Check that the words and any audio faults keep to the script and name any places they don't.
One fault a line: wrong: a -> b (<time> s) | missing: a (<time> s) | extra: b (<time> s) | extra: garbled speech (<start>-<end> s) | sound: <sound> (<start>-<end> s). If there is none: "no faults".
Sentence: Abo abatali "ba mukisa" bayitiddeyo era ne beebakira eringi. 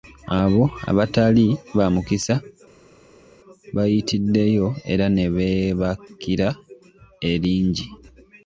no faults